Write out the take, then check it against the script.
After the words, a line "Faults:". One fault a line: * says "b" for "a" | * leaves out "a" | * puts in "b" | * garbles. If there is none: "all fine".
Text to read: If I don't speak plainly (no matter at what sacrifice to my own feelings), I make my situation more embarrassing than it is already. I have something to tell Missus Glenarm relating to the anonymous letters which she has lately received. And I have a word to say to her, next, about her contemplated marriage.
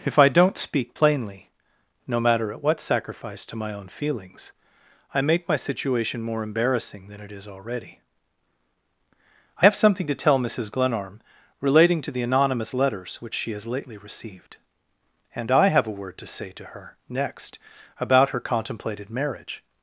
If I don't speak plainly (no matter at what sacrifice to my own feelings), I make my situation more embarrassing than it is already. I have something to tell Missus Glenarm relating to the anonymous letters which she has lately received. And I have a word to say to her, next, about her contemplated marriage.
Faults:
all fine